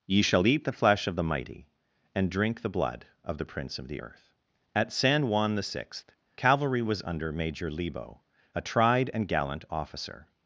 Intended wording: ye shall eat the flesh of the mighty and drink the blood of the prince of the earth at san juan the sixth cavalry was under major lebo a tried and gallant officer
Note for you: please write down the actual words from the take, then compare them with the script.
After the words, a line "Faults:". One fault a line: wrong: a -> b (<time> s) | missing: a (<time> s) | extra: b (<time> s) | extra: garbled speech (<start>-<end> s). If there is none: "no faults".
ye shall eat the flesh of the mighty and drink the blood of the prince of the earth at san juan the sixth cavalry was under major lebo a tried and gallant officer
Faults:
no faults